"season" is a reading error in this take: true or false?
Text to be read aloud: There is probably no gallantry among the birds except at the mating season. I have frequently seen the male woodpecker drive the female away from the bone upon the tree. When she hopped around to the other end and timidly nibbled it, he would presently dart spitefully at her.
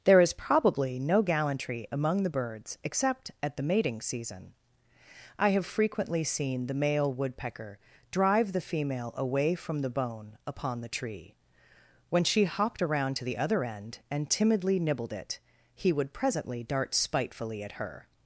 false